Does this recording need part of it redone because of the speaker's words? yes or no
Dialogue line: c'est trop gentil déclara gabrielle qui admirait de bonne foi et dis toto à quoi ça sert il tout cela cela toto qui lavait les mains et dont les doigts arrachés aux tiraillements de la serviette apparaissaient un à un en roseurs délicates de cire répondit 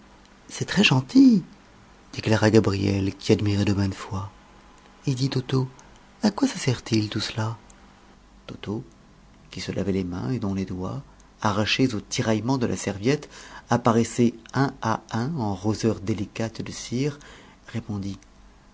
yes